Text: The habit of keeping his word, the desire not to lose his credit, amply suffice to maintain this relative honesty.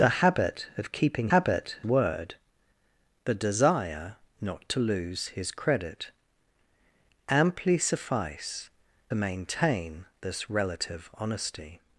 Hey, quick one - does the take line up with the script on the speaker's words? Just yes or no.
no